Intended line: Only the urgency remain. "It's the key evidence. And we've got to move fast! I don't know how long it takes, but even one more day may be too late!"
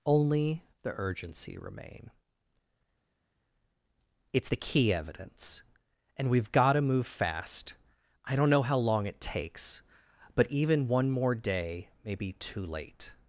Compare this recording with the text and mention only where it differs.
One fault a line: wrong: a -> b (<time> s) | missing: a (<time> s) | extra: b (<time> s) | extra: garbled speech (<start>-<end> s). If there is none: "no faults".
no faults